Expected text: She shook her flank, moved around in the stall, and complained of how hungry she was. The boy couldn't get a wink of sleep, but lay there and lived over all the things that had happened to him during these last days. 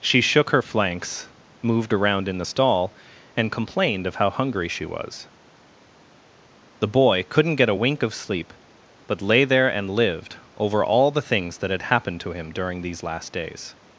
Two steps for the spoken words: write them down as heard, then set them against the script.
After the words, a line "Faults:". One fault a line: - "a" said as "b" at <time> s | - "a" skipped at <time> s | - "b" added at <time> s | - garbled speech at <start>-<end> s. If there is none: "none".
She shook her flanks, moved around in the stall, and complained of how hungry she was. The boy couldn't get a wink of sleep, but lay there and lived over all the things that had happened to him during these last days.
Faults:
- "flank" said as "flanks" at 0.6 s